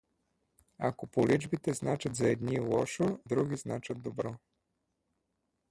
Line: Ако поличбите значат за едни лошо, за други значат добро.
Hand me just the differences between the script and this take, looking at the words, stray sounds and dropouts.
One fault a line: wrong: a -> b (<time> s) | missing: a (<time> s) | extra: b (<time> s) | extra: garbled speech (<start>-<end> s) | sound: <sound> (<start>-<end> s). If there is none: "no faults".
missing: за (3.2 s)